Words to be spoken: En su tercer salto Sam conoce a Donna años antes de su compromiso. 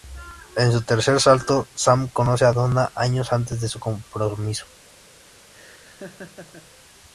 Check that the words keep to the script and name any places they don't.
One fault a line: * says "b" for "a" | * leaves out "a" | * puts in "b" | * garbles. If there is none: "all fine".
all fine